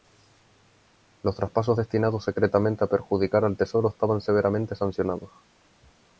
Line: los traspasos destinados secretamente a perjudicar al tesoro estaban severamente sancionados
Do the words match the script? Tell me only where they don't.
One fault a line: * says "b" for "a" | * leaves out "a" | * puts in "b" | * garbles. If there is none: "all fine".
all fine